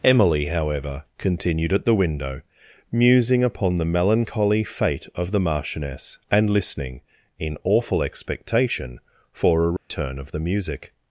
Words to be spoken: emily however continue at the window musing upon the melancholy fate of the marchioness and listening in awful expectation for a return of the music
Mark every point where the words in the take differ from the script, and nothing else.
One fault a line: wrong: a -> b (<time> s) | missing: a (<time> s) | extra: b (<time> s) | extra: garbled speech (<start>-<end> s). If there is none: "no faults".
wrong: continue -> continued (1.2 s)